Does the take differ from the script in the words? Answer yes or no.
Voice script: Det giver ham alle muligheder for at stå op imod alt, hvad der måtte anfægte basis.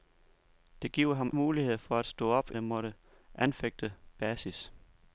yes